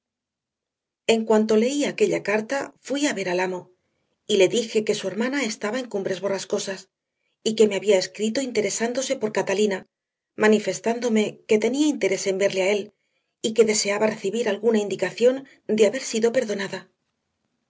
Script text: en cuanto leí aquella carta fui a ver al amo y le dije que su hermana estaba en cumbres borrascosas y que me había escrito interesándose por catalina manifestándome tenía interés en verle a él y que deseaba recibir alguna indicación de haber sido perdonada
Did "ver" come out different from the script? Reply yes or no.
no